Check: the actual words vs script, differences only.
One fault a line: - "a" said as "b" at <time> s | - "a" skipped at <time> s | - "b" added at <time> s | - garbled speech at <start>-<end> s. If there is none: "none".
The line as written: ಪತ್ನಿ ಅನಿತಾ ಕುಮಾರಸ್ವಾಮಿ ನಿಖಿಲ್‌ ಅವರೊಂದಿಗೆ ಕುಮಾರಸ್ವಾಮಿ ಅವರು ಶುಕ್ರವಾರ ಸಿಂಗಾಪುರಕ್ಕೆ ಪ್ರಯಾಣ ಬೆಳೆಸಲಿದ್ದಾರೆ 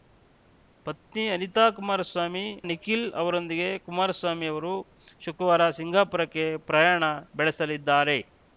none